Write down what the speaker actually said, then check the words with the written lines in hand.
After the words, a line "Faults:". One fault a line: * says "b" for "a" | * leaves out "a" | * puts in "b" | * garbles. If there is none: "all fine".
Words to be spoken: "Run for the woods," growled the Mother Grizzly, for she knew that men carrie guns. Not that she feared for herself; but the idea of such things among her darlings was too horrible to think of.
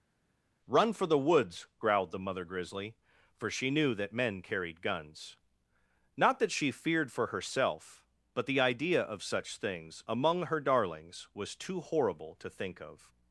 "Run for the woods," growled the Mother Grizzly, for she knew that men carried guns. Not that she feared for herself; but the idea of such things among her darlings was too horrible to think of.
Faults:
* says "carried" for "carrie"